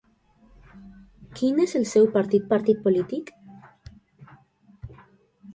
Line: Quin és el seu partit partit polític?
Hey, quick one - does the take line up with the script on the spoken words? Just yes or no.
yes